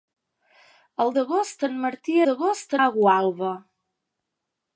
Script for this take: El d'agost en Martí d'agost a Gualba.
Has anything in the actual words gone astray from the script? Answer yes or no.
no